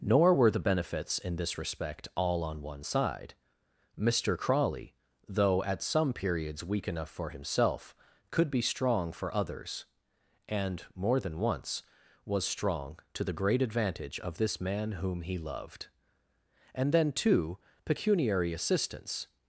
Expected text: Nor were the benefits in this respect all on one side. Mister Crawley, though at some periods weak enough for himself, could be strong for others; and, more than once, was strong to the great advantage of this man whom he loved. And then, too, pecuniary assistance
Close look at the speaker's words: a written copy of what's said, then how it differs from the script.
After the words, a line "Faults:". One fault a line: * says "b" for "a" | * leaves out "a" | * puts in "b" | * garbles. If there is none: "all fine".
Nor were the benefits in this respect all on one side. Mister Crawley, though at some periods weak enough for himself, could be strong for others; and, more than once, was strong to the great advantage of this man whom he loved. And then, too, pecuniary assistance
Faults:
all fine